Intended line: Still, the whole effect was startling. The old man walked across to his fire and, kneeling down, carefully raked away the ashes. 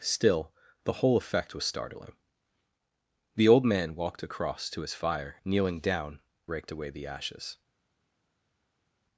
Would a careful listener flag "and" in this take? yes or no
yes